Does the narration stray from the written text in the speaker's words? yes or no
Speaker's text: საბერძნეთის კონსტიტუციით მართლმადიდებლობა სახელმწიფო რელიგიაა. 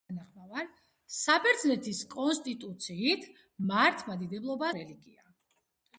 yes